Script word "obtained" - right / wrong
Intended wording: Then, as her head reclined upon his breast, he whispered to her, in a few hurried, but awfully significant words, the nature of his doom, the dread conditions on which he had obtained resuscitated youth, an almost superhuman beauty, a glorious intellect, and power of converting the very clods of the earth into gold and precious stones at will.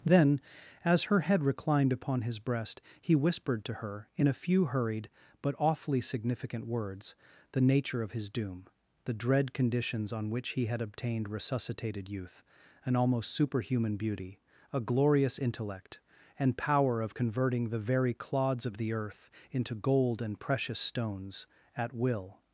right